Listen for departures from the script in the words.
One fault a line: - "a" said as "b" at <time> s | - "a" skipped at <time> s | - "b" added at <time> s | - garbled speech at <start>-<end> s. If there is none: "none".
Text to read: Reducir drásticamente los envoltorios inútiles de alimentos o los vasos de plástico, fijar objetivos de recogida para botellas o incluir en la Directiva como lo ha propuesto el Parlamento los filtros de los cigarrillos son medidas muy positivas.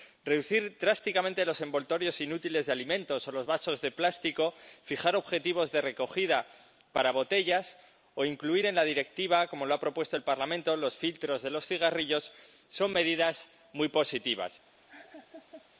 none